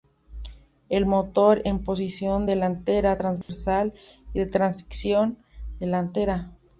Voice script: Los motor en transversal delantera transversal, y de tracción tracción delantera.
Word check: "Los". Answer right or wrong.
wrong